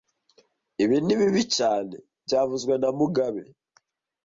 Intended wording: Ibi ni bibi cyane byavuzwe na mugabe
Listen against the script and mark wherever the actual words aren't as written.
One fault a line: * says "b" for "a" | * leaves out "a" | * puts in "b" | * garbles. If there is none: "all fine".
all fine